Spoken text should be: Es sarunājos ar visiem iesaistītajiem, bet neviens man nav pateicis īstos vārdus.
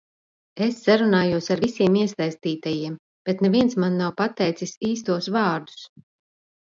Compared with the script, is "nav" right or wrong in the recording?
right